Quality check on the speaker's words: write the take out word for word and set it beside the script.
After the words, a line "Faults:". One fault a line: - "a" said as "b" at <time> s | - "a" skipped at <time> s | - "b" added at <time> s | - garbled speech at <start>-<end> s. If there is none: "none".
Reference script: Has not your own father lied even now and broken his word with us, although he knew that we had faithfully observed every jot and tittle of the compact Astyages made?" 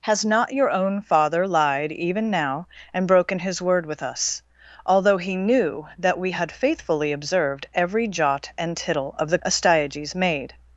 Has not your own father lied even now and broken his word with us, although he knew that we had faithfully observed every jot and tittle of the Astyages made?"
Faults:
- "compact" skipped at 9.4 s